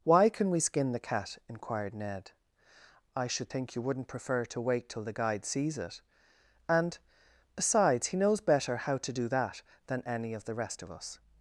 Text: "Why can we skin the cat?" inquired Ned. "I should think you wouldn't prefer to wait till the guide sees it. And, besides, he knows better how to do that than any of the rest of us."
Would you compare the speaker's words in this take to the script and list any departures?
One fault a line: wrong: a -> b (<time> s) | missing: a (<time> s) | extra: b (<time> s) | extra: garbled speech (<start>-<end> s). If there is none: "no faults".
no faults